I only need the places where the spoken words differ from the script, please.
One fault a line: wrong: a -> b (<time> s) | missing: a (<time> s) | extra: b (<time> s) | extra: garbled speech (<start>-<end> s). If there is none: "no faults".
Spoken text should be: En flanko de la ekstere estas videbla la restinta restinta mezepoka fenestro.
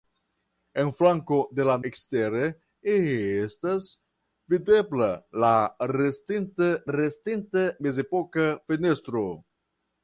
no faults